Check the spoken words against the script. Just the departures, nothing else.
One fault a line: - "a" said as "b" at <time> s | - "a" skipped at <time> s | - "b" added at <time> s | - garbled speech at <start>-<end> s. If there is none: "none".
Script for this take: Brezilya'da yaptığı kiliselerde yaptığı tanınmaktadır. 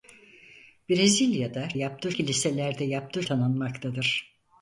none